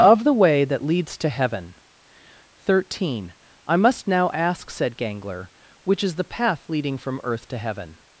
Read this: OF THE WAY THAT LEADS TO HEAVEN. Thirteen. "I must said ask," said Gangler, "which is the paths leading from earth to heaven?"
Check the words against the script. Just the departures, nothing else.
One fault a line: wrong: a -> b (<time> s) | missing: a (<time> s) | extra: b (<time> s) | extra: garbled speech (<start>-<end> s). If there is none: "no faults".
wrong: said -> now (4.1 s)
wrong: paths -> path (6.2 s)